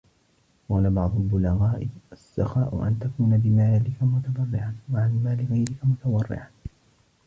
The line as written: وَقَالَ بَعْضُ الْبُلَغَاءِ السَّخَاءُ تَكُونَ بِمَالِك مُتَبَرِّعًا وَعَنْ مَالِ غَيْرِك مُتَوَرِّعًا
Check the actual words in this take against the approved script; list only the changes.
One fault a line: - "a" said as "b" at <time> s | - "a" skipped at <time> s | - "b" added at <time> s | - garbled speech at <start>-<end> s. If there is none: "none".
- "أَنْ" added at 2.9 s